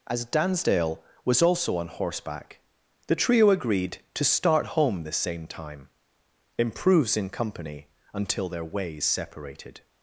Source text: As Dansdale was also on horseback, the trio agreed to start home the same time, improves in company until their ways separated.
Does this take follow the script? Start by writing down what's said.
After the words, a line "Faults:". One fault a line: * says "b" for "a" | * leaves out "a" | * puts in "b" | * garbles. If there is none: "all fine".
As Dansdale was also on horseback, the trio agreed to start home the same time, improves in company until their ways separated.
Faults:
all fine